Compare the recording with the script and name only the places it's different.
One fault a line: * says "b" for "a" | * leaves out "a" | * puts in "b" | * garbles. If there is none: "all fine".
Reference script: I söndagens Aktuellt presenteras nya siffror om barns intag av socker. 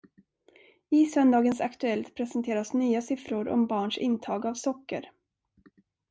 all fine